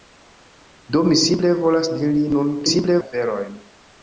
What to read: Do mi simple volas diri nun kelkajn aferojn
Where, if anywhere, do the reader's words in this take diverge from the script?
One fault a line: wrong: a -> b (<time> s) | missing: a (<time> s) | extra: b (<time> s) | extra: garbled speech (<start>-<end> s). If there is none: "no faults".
wrong: kelkajn -> simple (2.7 s)